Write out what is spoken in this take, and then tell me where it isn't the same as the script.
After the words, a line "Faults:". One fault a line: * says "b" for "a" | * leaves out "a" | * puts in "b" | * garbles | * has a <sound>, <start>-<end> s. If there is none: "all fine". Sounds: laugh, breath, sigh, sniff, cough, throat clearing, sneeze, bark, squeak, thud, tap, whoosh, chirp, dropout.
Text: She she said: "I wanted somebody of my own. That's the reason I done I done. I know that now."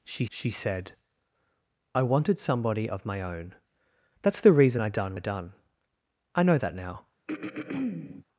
She she said: "I wanted somebody of my own. That's the reason I done I done. I know that now."
Faults:
* has a throat clearing, 7.3-8.2 s